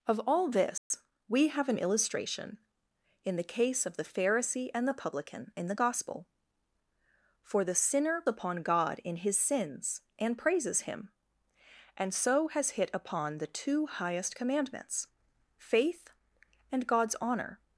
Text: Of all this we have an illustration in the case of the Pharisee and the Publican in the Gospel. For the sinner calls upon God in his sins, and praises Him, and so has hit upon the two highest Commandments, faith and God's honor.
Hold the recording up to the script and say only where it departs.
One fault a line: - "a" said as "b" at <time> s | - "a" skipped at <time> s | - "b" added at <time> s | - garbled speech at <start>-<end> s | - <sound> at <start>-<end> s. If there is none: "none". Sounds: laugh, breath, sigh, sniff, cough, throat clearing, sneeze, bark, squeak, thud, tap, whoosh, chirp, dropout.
- dropout at 0.8-0.9 s
- "calls" skipped at 8.2 s